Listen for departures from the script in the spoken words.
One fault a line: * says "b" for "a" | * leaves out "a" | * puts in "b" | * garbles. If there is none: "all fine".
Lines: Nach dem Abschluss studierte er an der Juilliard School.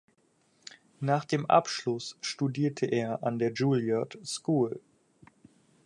all fine